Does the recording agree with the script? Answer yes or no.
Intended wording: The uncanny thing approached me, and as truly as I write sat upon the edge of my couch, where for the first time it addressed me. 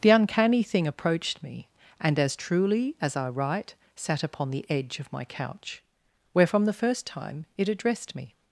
no